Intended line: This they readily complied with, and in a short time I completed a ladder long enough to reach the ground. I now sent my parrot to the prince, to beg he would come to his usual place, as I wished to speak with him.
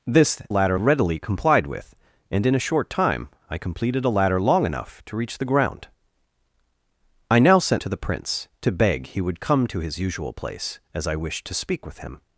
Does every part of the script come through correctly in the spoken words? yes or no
no